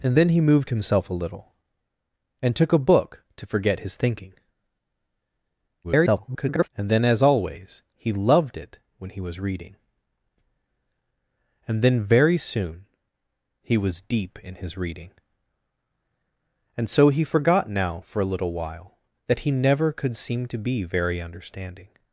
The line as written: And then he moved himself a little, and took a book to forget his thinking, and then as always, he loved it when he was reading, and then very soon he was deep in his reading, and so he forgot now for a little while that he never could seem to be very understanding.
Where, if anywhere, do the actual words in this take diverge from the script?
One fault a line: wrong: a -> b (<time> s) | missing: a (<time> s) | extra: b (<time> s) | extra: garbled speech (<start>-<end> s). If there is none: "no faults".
extra: garbled speech (5.8-6.7 s)